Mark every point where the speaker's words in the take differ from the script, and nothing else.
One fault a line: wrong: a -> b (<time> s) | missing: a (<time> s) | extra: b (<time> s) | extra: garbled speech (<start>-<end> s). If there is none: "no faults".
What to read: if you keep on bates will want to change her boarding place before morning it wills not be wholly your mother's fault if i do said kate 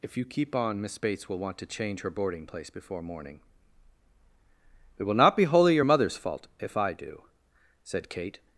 extra: miss (0.8 s)
wrong: wills -> will (5.0 s)